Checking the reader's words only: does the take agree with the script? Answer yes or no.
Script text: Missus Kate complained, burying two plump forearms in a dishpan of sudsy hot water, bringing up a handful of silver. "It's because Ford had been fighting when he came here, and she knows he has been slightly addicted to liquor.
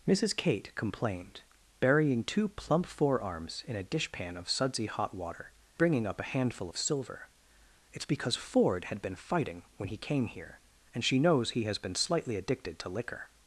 yes